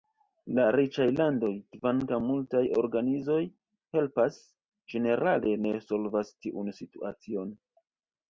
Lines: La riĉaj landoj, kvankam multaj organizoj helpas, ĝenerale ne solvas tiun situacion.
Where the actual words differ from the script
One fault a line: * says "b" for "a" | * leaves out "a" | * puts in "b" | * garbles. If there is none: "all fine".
all fine